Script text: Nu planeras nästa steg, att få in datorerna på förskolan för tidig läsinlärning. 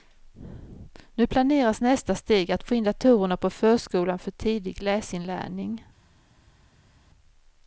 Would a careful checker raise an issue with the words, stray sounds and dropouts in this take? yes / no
no